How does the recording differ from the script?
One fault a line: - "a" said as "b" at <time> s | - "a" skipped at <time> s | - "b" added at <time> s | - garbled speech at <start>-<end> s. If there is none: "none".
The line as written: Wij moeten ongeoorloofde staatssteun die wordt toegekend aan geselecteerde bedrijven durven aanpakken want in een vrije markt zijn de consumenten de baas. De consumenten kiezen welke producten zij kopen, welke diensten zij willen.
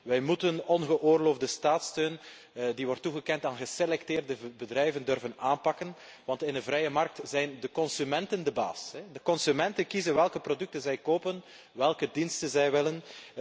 none